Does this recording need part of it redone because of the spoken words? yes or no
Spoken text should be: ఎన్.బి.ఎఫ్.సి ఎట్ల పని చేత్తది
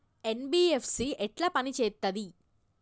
no